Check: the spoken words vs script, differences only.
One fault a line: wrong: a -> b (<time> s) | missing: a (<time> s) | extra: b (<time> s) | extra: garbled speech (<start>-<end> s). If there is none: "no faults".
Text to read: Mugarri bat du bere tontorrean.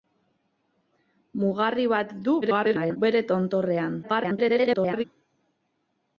extra: garbled speech (2.4-3.0 s)
extra: garbled speech (4.0-5.0 s)